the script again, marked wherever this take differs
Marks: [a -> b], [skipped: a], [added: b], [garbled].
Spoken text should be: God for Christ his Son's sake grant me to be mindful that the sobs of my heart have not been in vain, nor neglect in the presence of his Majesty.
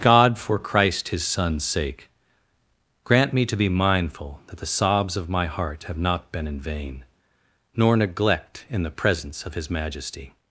God for Christ his Son's sake grant me to be mindful that the sobs of my heart have not been in vain, nor neglect in the presence of his Majesty.